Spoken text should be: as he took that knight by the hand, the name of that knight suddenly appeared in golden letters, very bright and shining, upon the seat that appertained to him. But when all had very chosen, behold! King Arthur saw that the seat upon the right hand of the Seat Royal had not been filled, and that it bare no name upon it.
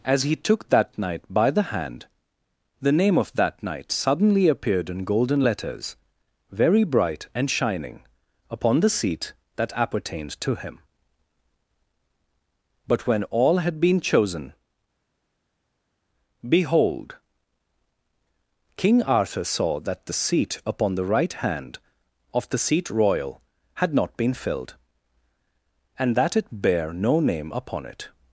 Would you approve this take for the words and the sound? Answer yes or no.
no